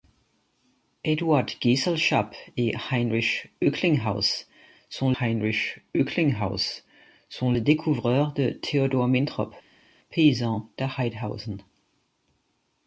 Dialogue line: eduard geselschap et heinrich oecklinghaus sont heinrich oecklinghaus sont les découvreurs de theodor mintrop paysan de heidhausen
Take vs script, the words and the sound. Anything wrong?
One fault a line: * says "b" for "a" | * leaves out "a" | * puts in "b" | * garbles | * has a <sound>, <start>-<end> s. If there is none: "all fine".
all fine